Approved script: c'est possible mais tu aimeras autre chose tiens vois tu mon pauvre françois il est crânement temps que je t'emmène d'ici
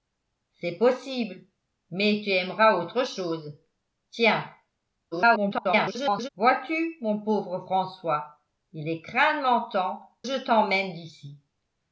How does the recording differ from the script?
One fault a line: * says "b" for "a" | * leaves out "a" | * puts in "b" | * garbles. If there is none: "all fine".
* garbles
* leaves out "que"